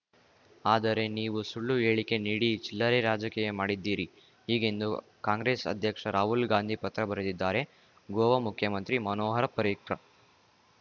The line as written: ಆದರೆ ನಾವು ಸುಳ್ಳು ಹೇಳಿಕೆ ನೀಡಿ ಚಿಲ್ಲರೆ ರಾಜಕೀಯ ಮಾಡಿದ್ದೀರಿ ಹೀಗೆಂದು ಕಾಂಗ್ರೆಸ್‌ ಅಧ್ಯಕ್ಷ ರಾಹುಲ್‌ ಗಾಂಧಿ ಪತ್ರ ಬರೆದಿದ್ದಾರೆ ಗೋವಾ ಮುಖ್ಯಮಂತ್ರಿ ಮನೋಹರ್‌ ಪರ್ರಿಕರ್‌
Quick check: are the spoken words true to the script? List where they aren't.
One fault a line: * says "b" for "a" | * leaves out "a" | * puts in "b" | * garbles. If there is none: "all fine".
* says "ನೀವು" for "ನಾವು"